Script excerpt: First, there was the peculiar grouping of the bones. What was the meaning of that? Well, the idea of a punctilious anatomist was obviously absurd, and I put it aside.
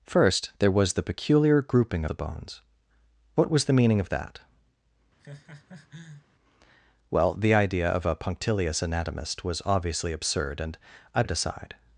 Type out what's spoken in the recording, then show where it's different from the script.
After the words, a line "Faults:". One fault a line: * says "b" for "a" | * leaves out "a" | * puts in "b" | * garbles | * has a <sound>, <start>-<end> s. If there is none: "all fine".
First, there was the peculiar grouping the bones. What was the meaning of that? Well, the idea of a punctilious anatomist was obviously absurd, and I it aside.
Faults:
* leaves out "of"
* has a laugh, 5.2-6.3 s
* leaves out "put"